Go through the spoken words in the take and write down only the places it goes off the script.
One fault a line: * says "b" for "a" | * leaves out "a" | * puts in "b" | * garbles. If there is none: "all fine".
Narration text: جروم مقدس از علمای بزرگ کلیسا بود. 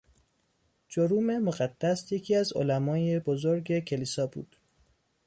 * puts in "یکی"